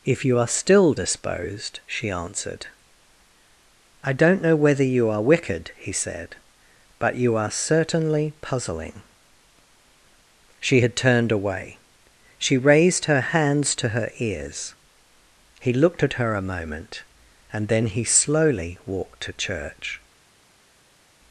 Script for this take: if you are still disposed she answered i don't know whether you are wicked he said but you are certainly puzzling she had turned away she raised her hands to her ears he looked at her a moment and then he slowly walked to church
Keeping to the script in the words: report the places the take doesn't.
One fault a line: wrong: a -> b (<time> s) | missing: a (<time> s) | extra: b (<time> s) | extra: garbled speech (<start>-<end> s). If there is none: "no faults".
no faults